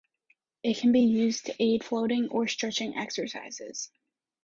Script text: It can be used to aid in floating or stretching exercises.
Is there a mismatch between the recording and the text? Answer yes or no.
yes